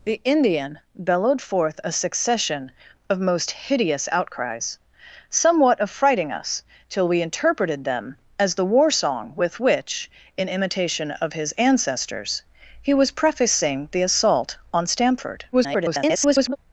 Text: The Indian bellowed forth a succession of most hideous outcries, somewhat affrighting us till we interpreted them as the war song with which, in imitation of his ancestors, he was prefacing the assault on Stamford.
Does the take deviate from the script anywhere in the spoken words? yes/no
yes